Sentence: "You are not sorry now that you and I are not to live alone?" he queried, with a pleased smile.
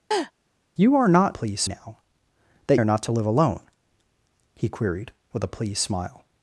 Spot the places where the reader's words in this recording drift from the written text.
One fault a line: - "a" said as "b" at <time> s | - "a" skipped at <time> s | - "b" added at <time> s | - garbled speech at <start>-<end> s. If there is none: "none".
- "sorry" said as "pleased" at 1.3 s
- "you and I" skipped at 2.8 s